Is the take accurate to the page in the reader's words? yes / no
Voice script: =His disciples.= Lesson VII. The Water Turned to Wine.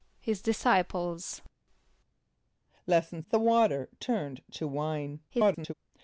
no